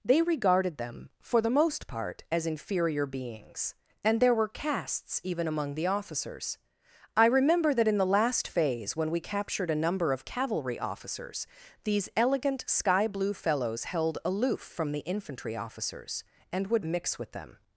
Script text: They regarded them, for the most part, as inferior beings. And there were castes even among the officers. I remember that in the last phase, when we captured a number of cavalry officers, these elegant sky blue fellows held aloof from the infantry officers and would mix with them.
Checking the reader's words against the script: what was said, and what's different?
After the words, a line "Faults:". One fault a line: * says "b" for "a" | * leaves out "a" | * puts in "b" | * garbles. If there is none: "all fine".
They regarded them, for the most part, as inferior beings. And there were castes even among the officers. I remember that in the last phase, when we captured a number of cavalry officers, these elegant sky blue fellows held aloof from the infantry officers and would mix with them.
Faults:
all fine